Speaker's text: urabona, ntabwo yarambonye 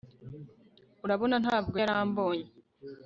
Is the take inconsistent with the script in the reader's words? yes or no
no